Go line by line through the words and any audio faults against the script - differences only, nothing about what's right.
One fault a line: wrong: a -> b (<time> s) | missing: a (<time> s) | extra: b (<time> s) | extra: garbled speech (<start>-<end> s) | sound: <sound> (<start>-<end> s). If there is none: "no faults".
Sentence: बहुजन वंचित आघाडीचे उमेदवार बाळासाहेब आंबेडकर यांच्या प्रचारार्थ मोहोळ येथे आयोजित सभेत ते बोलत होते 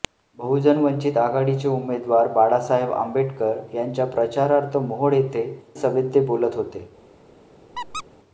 missing: आयोजित (5.4 s)
sound: squeak (7.7-8.0 s)